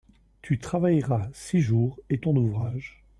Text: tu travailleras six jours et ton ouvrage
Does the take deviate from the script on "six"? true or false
false